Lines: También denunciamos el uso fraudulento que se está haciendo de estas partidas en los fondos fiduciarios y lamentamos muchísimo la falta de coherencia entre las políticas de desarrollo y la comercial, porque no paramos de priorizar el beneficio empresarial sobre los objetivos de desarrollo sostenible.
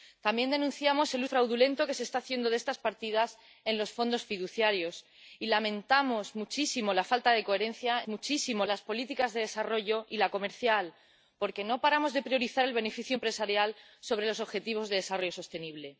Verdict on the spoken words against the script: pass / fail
fail